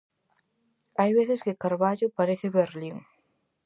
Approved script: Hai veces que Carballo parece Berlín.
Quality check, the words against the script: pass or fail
pass